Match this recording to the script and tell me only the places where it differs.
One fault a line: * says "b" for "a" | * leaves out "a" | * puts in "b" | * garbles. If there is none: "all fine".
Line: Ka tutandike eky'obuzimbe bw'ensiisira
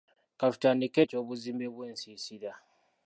all fine